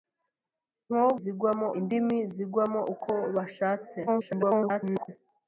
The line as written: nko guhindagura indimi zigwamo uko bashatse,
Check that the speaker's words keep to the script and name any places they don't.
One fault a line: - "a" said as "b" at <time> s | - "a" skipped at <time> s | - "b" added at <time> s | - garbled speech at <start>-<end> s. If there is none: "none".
- "guhindagura" said as "zigwamo" at 1.2 s
- garbled speech at 4.1-5.1 s